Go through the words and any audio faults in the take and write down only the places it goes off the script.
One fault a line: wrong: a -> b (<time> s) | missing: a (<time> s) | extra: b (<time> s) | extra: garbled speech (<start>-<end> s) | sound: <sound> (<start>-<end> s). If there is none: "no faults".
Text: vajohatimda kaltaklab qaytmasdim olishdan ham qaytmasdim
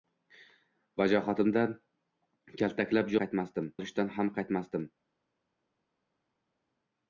no faults